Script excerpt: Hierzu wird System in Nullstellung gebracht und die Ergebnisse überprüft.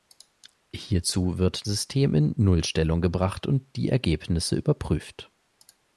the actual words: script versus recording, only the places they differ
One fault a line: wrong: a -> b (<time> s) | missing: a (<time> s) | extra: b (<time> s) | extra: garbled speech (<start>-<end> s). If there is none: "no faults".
no faults